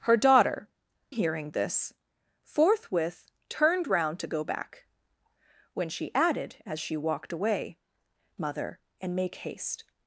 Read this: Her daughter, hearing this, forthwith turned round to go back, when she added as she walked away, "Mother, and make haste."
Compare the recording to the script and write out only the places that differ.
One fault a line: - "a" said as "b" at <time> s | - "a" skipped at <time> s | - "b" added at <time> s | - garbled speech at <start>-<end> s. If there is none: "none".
none